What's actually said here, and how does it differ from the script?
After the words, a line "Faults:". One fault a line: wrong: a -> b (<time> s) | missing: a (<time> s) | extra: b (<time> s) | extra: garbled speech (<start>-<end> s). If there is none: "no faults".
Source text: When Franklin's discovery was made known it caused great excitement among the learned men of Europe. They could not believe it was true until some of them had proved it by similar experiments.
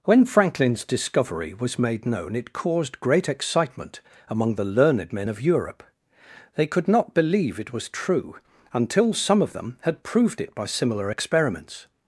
When Franklin's discovery was made known it caused great excitement among the learned men of Europe. They could not believe it was true until some of them had proved it by similar experiments.
Faults:
no faults